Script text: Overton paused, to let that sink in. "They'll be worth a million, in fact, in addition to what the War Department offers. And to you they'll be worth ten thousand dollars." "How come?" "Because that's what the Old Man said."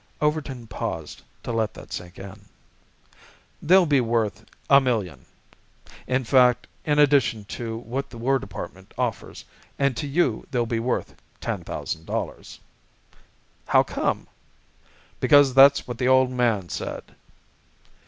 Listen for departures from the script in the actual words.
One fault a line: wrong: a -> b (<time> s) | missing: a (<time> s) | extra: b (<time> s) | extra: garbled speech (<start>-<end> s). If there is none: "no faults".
no faults